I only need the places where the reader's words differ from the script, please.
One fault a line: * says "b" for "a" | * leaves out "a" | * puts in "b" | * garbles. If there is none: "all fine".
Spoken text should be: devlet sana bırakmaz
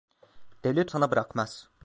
all fine